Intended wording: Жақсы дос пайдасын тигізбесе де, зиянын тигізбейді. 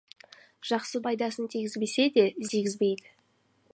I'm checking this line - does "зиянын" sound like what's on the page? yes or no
no